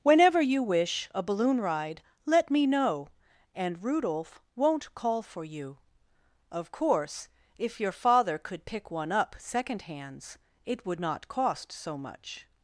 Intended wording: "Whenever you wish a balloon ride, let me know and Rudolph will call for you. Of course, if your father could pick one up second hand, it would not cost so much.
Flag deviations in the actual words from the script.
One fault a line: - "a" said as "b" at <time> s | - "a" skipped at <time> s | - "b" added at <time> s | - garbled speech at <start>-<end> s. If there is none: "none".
- "will" said as "won't" at 4.5 s
- "hand" said as "hands" at 9.8 s